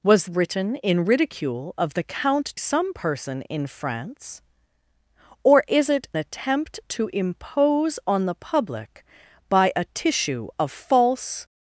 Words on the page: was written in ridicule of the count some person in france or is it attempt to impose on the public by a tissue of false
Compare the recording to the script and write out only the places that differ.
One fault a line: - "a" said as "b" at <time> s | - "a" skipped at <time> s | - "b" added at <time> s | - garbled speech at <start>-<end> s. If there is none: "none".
none